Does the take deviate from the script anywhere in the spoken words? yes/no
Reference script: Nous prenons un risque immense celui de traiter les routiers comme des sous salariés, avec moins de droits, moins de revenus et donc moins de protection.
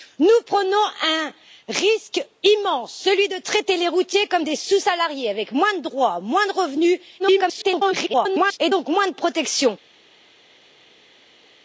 yes